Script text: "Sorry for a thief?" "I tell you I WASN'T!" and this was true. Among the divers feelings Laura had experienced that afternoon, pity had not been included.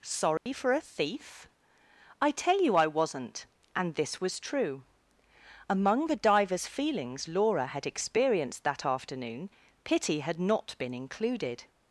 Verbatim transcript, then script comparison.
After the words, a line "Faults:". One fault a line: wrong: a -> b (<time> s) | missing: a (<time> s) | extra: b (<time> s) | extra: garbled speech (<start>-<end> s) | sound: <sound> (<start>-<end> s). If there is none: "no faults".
"Sorry for a thief?" "I tell you I WASN'T!" and this was true. Among the divers feelings Laura had experienced that afternoon, pity had not been included.
Faults:
sound: dropout (0.4-0.5 s)